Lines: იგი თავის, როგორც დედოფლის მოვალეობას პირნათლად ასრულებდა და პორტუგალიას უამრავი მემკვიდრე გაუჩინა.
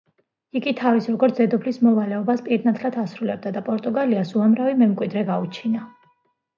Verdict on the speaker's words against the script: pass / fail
pass